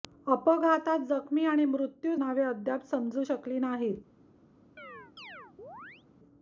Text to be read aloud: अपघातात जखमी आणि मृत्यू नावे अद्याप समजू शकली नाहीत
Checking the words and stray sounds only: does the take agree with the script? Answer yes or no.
no